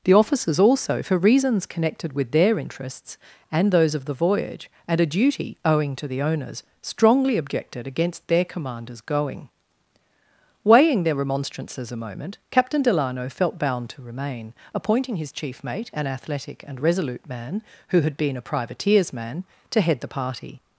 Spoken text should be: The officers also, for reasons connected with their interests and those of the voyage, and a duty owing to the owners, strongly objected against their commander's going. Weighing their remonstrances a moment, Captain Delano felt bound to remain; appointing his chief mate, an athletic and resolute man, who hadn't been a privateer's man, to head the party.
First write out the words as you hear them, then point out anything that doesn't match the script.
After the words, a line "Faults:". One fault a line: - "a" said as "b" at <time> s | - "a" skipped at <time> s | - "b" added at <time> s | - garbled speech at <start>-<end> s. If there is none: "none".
The officers also, for reasons connected with their interests and those of the voyage, and a duty owing to the owners, strongly objected against their commander's going. Weighing their remonstrances a moment, Captain Delano felt bound to remain; appointing his chief mate, an athletic and resolute man, who had been a privateer's man, to head the party.
Faults:
- "hadn't" said as "had" at 18.0 s